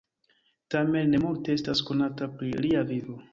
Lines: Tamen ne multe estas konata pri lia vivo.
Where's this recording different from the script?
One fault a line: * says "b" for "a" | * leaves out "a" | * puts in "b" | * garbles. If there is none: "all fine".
all fine